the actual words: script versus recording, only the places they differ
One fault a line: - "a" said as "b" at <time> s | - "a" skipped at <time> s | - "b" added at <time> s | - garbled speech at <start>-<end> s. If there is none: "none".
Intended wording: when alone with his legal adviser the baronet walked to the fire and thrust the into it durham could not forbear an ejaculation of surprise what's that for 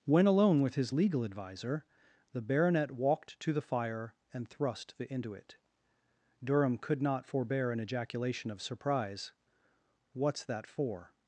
none